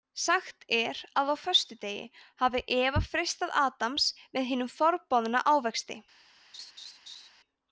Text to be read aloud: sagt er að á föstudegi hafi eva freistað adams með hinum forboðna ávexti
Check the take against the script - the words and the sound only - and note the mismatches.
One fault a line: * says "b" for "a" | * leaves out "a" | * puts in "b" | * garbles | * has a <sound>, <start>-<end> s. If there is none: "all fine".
* has a laugh, 6.5-7.3 s